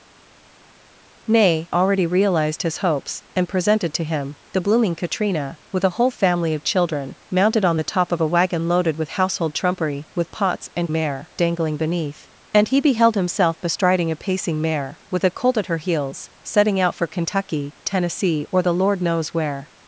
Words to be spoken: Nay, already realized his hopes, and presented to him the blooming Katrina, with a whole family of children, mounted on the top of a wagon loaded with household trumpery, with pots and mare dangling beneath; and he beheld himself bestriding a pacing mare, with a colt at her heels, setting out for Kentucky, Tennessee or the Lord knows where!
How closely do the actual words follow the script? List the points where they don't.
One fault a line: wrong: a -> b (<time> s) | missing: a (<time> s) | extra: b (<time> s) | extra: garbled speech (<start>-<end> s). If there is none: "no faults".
no faults